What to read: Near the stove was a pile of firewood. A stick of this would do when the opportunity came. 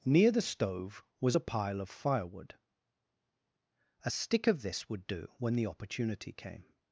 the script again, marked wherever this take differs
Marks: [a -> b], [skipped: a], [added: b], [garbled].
Near the stove was a pile of firewood. A stick of this would do when the opportunity came.